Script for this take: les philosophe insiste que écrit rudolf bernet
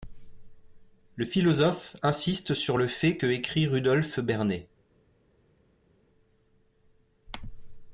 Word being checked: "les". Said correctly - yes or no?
no